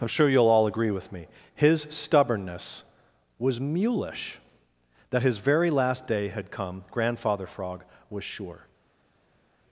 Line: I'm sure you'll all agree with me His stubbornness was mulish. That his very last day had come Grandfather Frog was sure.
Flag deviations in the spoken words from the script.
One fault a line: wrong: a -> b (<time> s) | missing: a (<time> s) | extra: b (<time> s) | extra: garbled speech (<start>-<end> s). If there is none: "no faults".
no faults